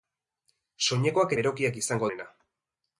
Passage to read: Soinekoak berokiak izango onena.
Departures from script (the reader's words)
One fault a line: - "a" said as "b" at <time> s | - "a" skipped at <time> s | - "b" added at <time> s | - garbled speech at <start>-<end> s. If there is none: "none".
none